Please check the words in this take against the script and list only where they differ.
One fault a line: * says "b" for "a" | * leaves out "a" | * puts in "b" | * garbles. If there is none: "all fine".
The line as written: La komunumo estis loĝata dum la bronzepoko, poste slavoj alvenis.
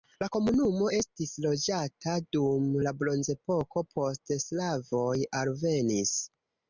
all fine